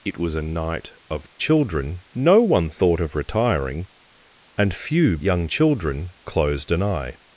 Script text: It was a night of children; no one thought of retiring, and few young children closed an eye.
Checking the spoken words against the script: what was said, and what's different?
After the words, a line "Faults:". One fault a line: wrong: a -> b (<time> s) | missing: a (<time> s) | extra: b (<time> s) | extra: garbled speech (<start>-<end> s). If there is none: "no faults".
It was a night of children; no one thought of retiring, and few young children closed an eye.
Faults:
no faults